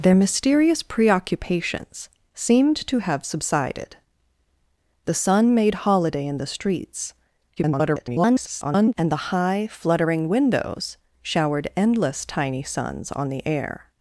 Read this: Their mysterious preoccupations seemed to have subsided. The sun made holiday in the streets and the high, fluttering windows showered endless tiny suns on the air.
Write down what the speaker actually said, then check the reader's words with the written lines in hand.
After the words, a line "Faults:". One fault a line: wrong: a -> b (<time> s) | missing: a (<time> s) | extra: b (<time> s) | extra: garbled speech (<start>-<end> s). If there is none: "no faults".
Their mysterious preoccupations seemed to have subsided. The sun made holiday in the streets [garbled] and the high, fluttering windows showered endless tiny suns on the air.
Faults:
extra: garbled speech (7.6-8.9 s)